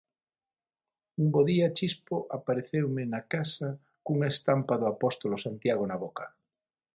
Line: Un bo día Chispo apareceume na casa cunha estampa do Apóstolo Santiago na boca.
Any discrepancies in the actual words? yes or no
no